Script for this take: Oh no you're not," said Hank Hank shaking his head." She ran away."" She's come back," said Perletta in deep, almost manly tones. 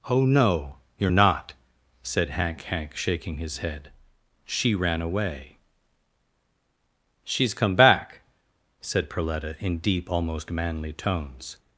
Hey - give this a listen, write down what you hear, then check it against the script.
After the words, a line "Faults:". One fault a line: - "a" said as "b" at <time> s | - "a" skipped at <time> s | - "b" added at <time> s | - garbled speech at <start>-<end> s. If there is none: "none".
Oh no you're not," said Hank Hank shaking his head." She ran away."" She's come back," said Perletta in deep, almost manly tones.
Faults:
none